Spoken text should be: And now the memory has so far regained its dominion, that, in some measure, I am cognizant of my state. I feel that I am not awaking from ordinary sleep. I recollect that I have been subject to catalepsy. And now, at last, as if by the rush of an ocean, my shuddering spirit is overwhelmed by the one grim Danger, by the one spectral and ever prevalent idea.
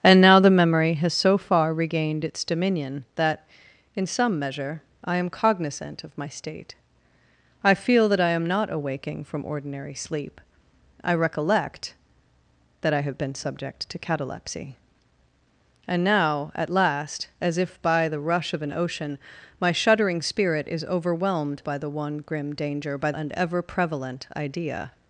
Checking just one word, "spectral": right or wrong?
wrong